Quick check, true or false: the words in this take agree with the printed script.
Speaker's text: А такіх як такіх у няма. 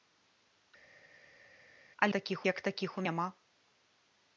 true